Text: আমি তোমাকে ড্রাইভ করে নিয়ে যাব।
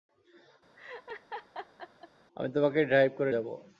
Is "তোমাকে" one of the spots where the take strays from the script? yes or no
no